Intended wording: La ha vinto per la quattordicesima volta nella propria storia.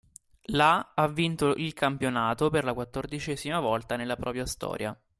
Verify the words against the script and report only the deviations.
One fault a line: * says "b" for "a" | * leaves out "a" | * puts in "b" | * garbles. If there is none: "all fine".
* puts in "il campionato"